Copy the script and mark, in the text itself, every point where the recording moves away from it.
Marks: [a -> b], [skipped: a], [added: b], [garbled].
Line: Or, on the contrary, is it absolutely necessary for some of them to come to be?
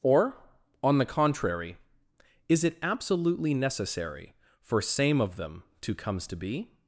Or, on the contrary, is it absolutely necessary for [some -> same] of them to [come -> comes] to be?